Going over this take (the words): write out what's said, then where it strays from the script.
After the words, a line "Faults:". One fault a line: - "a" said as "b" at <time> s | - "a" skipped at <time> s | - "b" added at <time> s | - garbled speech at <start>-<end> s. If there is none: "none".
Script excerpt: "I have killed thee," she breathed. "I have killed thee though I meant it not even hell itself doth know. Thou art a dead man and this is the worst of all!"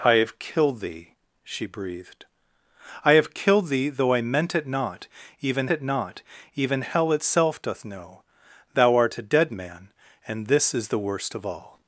"I have killed thee," she breathed. "I have killed thee though I meant it not even it not even hell itself doth know. Thou art a dead man and this is the worst of all!"
Faults:
- "it not even" added at 5.7 s